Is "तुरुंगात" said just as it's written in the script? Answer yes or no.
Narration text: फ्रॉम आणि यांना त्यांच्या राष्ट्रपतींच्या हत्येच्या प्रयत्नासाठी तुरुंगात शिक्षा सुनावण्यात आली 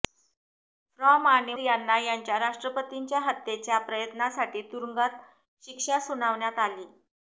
yes